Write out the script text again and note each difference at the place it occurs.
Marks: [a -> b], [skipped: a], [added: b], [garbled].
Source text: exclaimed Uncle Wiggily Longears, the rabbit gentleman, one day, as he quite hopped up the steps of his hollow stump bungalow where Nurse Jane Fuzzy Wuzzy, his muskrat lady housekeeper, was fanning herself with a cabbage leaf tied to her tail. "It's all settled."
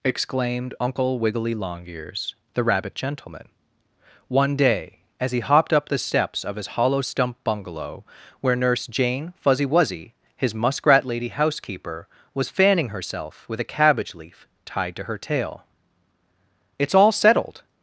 exclaimed Uncle Wiggily Longears, the rabbit gentleman, one day, as he [skipped: quite] hopped up the steps of his hollow stump bungalow where Nurse Jane Fuzzy Wuzzy, his muskrat lady housekeeper, was fanning herself with a cabbage leaf tied to her tail. "It's all settled."